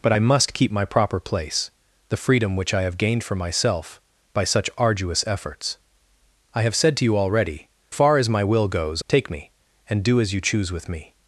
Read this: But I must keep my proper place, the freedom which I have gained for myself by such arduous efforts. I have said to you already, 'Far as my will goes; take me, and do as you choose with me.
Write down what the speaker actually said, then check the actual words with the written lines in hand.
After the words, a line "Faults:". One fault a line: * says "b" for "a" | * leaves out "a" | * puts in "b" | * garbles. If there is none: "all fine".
But I must keep my proper place, the freedom which I have gained for myself by such arduous efforts. I have said to you already, 'Far as my will goes; take me, and do as you choose with me.
Faults:
all fine